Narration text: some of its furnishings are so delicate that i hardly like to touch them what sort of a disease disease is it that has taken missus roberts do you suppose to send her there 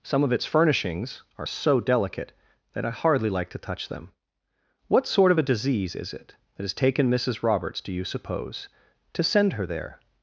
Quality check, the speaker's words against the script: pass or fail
fail